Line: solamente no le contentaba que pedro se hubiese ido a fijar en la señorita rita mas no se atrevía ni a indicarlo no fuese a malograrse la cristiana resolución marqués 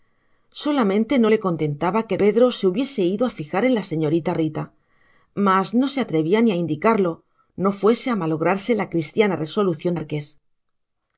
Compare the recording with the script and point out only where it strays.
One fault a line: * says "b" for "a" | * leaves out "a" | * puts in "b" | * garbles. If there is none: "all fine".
all fine